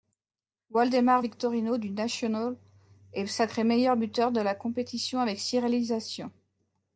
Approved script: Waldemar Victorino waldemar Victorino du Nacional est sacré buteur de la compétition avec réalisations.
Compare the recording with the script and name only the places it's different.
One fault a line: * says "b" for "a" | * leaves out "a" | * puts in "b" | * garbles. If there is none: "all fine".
* leaves out "waldemar Victorino"
* puts in "meilleur"
* puts in "six"